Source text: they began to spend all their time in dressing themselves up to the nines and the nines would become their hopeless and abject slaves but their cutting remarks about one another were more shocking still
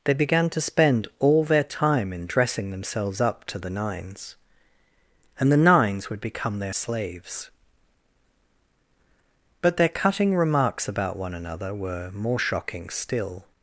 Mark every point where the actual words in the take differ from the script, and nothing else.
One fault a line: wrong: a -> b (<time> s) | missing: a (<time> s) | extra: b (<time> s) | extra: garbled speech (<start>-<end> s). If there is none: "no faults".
missing: hopeless and abject (6.7 s)